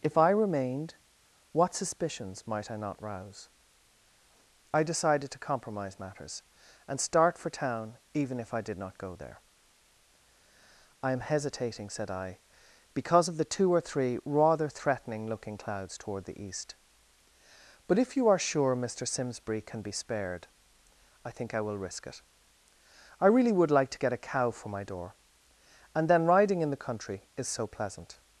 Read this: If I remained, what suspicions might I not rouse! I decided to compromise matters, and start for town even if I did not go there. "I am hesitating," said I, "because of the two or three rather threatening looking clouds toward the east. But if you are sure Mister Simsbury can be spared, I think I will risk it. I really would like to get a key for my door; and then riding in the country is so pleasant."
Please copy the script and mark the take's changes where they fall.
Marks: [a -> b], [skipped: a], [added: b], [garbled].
If I remained, what suspicions might I not rouse! I decided to compromise matters, and start for town even if I did not go there. "I am hesitating," said I, "because of the two or three rather threatening looking clouds toward the east. But if you are sure Mister Simsbury can be spared, I think I will risk it. I really would like to get a [key -> cow] for my door; and then riding in the country is so pleasant."